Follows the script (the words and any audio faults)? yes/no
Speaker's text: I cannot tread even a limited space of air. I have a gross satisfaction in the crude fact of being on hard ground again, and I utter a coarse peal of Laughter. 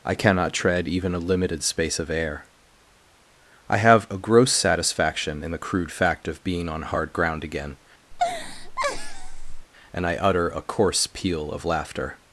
no